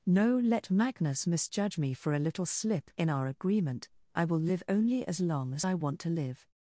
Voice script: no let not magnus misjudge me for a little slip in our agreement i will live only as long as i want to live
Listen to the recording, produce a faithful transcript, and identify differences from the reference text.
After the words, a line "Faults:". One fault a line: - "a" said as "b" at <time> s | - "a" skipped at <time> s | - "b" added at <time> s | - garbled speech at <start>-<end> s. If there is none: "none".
no let magnus misjudge me for a little slip in our agreement i will live only as long as i want to live
Faults:
- "not" skipped at 0.7 s